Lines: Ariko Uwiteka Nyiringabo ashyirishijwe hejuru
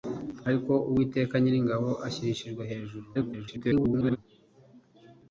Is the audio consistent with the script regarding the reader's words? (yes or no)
no